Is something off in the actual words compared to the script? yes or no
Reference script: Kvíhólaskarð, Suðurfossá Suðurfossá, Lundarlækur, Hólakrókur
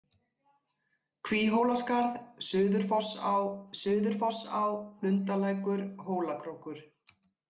no